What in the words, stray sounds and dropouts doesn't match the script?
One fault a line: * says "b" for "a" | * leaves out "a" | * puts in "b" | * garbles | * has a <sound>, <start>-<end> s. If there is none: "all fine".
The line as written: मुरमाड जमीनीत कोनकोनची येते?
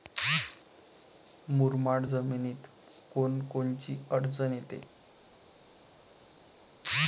* puts in "अडचन"